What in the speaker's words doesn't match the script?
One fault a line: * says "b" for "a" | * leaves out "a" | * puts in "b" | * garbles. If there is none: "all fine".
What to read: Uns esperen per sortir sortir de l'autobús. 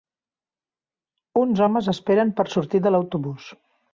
* puts in "homes"
* leaves out "sortir"